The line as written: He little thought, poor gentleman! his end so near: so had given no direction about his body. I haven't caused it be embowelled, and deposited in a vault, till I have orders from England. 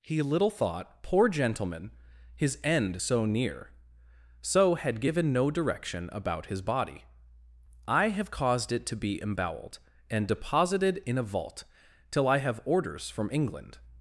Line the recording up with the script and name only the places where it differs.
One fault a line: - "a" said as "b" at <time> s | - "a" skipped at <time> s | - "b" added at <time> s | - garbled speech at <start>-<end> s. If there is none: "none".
- "haven't" said as "have" at 8.1 s
- "to" added at 8.8 s